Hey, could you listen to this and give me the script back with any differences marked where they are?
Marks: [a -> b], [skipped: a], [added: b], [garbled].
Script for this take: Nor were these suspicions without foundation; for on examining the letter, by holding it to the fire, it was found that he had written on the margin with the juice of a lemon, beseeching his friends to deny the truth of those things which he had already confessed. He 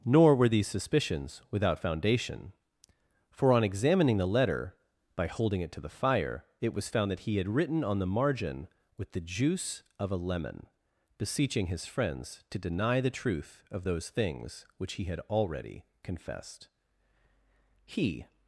Nor were these suspicions without foundation; for on examining the letter, by holding it to the fire, it was found that he had written on the margin with the juice of a lemon, beseeching his friends to deny the truth of those things which he had already confessed. He